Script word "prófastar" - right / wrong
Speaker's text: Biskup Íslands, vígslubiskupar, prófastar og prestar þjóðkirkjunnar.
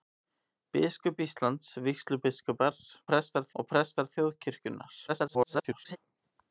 wrong